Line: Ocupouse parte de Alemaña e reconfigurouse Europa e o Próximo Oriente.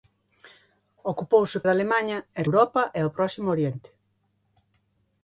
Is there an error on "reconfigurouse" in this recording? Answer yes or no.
yes